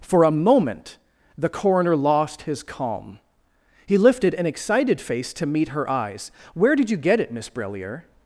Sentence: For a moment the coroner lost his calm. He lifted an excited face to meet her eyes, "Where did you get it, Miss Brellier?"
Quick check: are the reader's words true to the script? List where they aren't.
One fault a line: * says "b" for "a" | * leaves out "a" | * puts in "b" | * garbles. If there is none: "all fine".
all fine